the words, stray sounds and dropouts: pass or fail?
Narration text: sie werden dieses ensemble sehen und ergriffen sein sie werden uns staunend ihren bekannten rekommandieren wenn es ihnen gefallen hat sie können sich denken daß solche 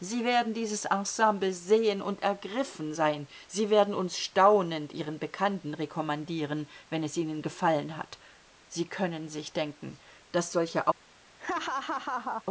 fail